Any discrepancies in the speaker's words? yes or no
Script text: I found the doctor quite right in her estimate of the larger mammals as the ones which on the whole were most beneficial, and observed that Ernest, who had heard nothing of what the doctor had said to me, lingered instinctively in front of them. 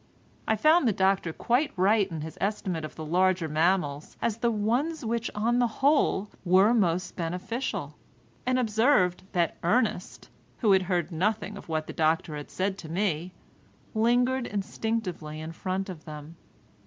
yes